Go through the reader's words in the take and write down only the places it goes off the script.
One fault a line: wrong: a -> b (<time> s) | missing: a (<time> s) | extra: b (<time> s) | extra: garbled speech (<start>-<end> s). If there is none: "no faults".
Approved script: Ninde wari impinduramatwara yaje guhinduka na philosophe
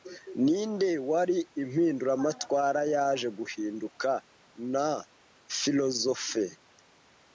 no faults